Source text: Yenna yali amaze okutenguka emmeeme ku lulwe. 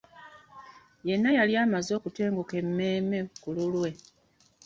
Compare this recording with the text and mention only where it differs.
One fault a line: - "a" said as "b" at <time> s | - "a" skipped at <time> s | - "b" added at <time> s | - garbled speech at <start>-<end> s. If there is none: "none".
none